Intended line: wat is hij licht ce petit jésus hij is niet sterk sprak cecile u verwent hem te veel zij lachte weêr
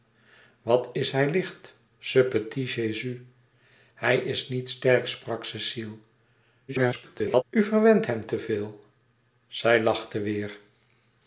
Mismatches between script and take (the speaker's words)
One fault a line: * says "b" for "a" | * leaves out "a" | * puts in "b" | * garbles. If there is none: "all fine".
* garbles